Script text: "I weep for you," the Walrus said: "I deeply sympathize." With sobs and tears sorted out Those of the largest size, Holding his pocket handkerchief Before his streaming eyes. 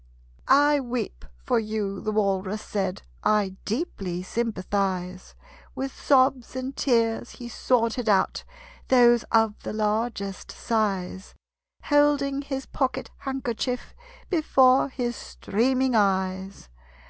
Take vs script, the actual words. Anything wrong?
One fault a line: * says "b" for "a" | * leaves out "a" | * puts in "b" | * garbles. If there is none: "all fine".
* puts in "he"